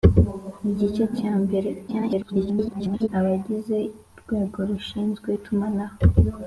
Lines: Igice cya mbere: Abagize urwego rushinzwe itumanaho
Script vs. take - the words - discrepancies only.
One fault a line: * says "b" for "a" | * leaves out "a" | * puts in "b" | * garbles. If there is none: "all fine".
* garbles